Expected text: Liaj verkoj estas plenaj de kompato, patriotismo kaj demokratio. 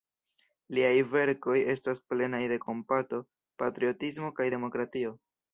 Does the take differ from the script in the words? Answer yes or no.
no